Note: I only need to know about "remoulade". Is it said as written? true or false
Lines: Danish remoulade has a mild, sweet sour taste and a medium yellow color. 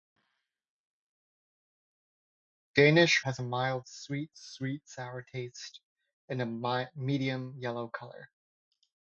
false